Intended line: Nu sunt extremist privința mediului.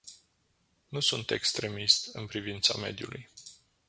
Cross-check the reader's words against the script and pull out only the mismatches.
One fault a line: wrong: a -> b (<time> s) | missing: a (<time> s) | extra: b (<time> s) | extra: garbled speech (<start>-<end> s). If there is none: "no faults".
extra: în (2.1 s)